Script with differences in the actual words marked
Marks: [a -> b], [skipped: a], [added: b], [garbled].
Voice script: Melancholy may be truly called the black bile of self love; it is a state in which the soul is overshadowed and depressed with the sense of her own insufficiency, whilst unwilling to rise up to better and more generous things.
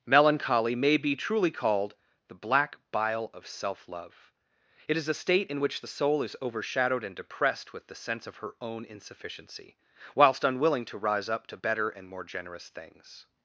Melancholy may be truly called the black bile of self love; it is a state in which the soul is overshadowed and depressed with the sense of her own insufficiency, whilst unwilling to rise up to better and more generous things.